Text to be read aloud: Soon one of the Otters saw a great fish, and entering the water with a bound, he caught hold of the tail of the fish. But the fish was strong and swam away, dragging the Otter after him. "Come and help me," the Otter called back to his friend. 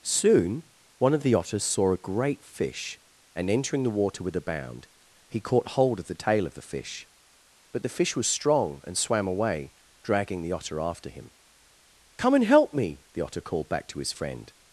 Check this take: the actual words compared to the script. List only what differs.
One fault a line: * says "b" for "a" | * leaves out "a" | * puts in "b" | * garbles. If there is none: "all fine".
all fine